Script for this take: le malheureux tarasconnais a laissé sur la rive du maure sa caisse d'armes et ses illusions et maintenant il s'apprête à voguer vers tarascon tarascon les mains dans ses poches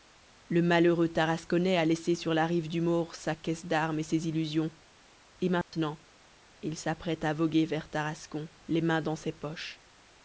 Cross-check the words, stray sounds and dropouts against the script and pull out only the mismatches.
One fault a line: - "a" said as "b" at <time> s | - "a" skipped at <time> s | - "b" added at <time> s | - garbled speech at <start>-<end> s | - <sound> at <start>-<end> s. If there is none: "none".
- dropout at 5.6-5.7 s
- "tarascon" skipped at 8.5 s